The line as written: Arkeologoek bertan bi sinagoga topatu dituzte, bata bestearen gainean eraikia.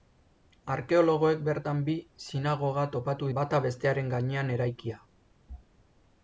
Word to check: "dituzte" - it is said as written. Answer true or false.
false